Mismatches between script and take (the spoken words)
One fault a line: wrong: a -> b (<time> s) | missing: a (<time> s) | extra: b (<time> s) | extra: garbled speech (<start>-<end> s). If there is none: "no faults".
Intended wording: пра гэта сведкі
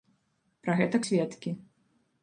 no faults